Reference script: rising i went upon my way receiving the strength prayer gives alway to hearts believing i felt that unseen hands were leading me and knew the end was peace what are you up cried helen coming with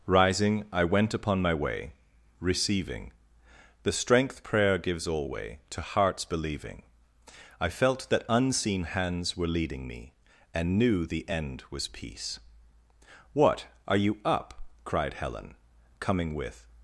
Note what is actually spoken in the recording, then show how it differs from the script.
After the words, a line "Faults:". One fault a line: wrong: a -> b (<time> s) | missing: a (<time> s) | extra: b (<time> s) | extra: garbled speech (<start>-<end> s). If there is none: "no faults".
rising i went upon my way receiving the strength prayer gives alway to hearts believing i felt that unseen hands were leading me and knew the end was peace what are you up cried helen coming with
Faults:
no faults